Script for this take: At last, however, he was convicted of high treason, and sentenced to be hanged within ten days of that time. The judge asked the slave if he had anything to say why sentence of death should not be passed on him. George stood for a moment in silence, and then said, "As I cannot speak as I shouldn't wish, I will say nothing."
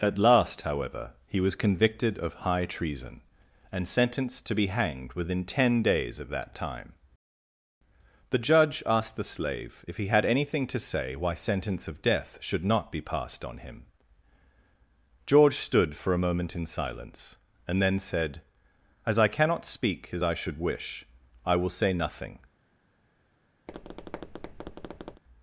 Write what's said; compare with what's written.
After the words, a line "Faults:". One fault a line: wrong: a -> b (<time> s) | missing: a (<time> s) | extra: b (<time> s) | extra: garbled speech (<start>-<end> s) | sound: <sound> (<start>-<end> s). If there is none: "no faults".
At last, however, he was convicted of high treason, and sentenced to be hanged within ten days of that time. The judge asked the slave if he had anything to say why sentence of death should not be passed on him. George stood for a moment in silence, and then said, "As I cannot speak as I should wish, I will say nothing."
Faults:
wrong: shouldn't -> should (20.3 s)
sound: tap (23.7-25.2 s)